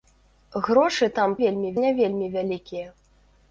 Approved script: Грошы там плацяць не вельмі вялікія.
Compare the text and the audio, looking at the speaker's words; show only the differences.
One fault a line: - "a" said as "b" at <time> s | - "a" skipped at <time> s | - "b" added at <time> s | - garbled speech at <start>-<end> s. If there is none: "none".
- "плацяць" said as "вельмі" at 1.4 s